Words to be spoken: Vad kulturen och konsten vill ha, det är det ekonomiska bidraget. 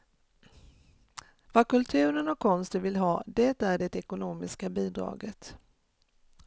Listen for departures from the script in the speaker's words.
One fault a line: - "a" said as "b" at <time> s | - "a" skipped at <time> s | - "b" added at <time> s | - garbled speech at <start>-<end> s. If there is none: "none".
none